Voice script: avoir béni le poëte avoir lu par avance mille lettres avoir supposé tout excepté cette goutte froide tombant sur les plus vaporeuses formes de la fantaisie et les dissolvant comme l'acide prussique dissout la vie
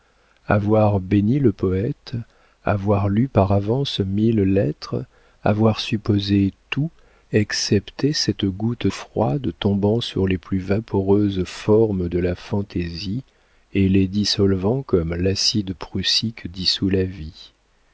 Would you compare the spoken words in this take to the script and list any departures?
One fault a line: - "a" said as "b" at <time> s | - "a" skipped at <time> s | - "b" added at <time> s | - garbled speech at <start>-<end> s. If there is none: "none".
none